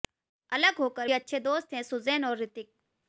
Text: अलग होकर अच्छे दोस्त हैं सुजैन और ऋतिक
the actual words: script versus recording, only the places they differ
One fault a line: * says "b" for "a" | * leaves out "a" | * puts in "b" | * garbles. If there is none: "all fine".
all fine